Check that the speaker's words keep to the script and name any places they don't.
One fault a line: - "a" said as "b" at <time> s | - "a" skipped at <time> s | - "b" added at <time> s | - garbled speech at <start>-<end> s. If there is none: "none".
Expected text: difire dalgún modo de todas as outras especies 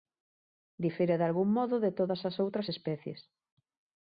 none